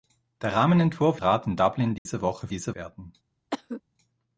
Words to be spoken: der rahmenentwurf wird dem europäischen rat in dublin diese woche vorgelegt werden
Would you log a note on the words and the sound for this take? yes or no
yes